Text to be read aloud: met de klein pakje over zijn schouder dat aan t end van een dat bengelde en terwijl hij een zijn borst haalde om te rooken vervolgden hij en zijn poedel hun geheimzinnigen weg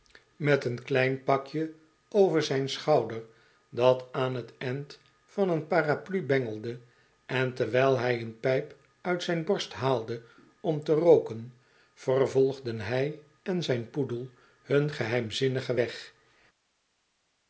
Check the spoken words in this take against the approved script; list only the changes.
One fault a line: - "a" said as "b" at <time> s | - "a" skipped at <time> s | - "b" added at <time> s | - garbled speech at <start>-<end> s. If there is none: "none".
- "de" said as "een" at 0.7 s
- "dat" said as "paraplu" at 5.7 s
- "pijp uit" added at 8.4 s